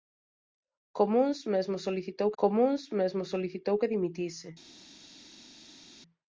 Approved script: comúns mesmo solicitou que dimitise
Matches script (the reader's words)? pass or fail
fail